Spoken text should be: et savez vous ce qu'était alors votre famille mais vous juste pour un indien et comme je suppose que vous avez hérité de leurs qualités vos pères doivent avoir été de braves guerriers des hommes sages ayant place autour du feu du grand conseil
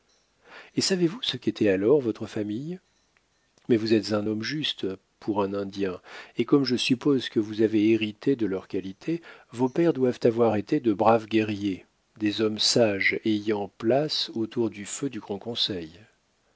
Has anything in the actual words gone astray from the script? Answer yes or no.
yes